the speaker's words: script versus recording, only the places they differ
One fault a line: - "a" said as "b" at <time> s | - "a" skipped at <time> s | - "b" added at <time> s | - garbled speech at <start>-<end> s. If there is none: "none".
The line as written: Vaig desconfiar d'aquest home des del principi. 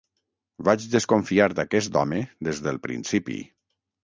none